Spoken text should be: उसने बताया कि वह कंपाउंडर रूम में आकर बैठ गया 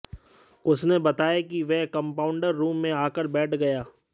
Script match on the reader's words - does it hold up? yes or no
yes